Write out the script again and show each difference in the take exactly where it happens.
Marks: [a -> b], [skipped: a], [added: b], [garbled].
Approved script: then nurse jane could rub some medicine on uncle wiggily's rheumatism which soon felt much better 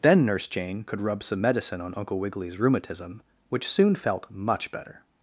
then nurse jane could rub some medicine on uncle wiggily's rheumatism which soon felt much better